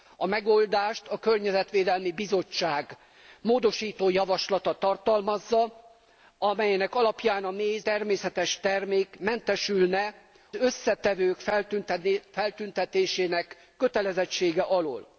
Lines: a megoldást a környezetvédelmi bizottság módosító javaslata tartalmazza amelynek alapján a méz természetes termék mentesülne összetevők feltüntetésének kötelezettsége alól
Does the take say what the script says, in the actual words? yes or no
yes